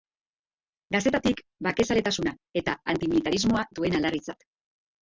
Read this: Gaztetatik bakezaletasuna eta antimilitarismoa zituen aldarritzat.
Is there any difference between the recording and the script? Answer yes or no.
no